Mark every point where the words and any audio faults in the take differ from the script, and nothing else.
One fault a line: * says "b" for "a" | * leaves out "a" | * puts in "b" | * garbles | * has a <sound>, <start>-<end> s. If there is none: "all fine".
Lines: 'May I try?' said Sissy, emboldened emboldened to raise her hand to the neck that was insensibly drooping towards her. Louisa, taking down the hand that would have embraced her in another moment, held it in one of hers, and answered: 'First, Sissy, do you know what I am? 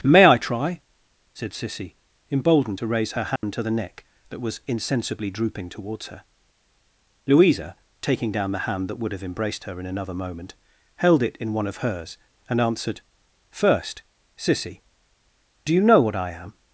* leaves out "emboldened"
* has a dropout, 3.4-3.4 s